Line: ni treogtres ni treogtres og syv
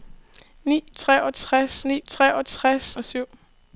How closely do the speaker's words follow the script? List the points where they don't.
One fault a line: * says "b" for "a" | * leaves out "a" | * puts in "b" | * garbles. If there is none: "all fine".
all fine